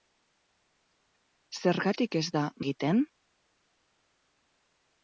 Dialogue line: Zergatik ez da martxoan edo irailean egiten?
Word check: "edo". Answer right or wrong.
wrong